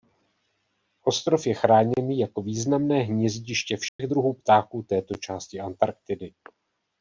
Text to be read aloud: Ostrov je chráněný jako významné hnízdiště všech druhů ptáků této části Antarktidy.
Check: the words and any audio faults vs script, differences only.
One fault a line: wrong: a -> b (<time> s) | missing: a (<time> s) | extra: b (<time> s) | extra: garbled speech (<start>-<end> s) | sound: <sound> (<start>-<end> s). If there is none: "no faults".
sound: dropout (3.9-4.0 s)